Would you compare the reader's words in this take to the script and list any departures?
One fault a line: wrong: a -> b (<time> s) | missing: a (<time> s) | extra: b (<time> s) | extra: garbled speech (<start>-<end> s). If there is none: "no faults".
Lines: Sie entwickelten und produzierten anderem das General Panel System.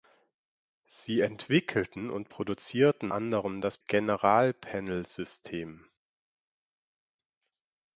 no faults